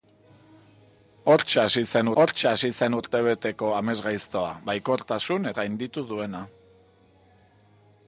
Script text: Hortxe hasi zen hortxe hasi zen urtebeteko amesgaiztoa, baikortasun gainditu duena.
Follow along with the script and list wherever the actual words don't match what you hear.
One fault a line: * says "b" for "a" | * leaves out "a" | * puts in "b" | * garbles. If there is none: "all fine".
all fine